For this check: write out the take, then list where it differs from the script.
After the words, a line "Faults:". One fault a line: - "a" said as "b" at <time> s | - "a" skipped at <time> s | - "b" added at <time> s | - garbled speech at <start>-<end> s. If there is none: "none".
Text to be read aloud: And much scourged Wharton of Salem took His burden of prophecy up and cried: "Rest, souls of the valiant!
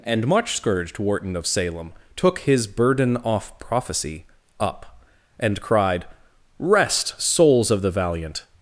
And much scourged Wharton of Salem took His burden off prophecy up and cried: "Rest, souls of the valiant!
Faults:
- "of" said as "off" at 3.2 s